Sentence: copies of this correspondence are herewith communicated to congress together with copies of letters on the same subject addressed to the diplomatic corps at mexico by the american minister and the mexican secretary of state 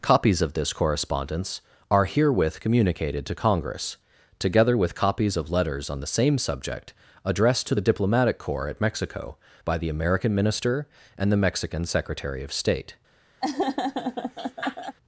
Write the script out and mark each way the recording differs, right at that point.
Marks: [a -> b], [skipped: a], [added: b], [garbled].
copies of this correspondence are herewith communicated to congress together with copies of letters on the same subject addressed to the diplomatic corps at mexico by the american minister and the mexican secretary of state